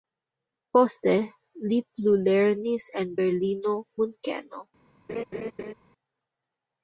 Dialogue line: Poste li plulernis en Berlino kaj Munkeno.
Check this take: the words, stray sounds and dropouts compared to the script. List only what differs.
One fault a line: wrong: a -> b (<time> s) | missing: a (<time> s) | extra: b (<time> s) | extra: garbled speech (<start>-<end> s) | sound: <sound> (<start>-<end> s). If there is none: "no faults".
missing: kaj (3.8 s)
sound: laugh (5.1-5.7 s)